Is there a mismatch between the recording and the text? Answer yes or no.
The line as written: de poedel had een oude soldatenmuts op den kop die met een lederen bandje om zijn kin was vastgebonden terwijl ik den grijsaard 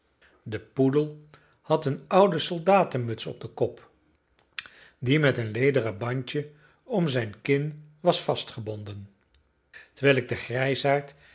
no